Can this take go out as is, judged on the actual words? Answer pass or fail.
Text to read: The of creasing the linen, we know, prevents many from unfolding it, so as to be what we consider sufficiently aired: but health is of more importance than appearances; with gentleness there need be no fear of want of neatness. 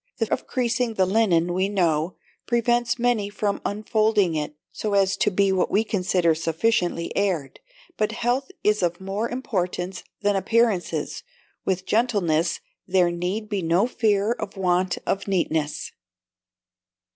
pass